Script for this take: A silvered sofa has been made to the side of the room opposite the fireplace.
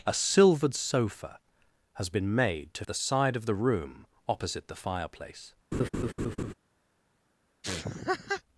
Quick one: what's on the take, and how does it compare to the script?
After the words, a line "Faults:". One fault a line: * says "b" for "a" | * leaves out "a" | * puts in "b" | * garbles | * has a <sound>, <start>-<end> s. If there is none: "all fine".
A silvered sofa has been made to the side of the room opposite the fireplace.
Faults:
* has a laugh, 5.7-6.5 s
* has a laugh, 7.6-8.4 s